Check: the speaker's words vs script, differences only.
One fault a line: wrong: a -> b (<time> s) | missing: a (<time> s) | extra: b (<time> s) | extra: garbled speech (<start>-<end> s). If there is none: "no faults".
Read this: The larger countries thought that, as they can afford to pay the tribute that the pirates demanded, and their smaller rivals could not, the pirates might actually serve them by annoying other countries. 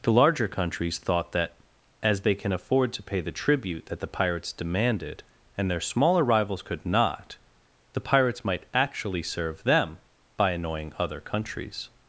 no faults